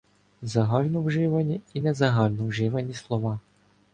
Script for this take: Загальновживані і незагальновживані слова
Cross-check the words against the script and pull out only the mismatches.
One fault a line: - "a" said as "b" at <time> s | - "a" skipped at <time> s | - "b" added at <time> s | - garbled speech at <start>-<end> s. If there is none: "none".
none